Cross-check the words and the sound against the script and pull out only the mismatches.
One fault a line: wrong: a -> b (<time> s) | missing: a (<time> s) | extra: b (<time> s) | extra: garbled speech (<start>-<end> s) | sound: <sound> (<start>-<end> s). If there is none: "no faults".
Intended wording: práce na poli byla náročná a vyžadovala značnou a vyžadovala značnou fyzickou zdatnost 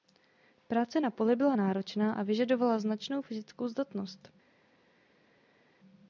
missing: a vyžadovala značnou (3.2 s)